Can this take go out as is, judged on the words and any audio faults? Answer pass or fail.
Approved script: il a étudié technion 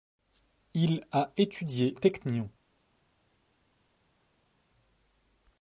pass